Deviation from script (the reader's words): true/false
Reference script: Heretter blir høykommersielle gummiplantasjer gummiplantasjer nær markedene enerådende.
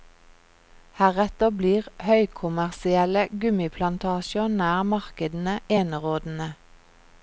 true